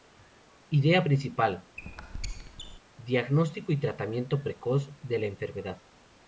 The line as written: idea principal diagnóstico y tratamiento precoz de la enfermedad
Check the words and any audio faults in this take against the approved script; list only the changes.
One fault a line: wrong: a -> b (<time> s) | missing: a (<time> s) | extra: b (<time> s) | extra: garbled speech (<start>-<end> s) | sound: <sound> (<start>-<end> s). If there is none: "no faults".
sound: squeak (1.8-2.8 s)